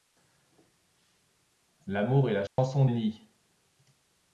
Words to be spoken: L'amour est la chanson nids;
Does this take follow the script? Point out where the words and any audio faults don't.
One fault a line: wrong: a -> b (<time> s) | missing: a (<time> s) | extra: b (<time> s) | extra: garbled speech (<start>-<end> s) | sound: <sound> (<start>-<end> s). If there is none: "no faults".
sound: dropout (2.5-2.6 s)